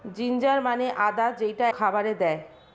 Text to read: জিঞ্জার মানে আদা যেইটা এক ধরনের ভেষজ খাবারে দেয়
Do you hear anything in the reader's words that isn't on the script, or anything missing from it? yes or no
yes